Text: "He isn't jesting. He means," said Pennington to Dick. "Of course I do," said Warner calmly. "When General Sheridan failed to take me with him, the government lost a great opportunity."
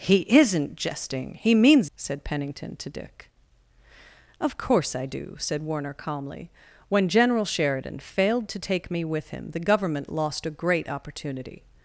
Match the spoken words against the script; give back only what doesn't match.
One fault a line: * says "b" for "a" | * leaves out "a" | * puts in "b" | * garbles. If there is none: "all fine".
all fine